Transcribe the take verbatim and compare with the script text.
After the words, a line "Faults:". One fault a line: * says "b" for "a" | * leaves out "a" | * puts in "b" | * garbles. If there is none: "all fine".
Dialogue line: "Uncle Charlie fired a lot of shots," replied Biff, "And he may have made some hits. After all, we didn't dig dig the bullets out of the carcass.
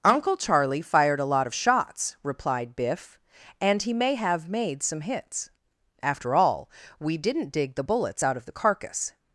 "Uncle Charlie fired a lot of shots," replied Biff, "And he may have made some hits. After all, we didn't dig the bullets out of the carcass.
Faults:
* leaves out "dig"